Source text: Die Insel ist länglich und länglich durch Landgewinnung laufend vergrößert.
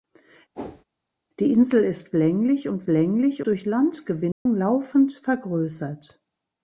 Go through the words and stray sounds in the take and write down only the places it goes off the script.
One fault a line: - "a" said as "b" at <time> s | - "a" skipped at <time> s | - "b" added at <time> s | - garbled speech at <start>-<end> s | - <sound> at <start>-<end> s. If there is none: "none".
- whoosh at 0.5-0.8 s
- dropout at 4.3-4.5 s